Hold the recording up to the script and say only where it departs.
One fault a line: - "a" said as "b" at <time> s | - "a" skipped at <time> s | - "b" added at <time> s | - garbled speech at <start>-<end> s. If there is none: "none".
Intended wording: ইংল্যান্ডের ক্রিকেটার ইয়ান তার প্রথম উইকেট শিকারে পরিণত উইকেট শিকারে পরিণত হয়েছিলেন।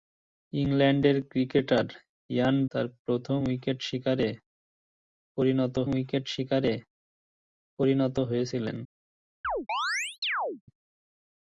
none